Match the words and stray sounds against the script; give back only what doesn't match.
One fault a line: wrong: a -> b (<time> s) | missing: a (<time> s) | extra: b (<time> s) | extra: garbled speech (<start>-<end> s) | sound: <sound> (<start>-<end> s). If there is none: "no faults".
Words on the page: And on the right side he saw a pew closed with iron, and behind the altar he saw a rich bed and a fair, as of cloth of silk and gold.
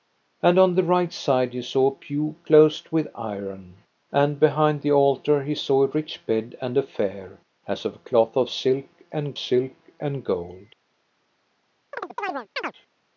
extra: silk and (9.3 s)
sound: chirp (11.9-12.7 s)